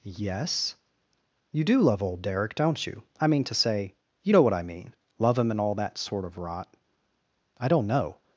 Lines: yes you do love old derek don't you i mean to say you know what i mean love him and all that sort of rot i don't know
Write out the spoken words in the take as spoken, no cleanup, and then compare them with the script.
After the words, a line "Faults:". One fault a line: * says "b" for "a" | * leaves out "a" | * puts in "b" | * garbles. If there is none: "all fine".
yes you do love old derek don't you i mean to say you know what i mean love him and all that sort of rot i don't know
Faults:
all fine